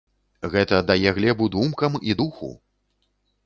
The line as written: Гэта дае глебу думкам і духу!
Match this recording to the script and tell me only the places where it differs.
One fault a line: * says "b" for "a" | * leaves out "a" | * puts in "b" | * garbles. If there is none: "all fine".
all fine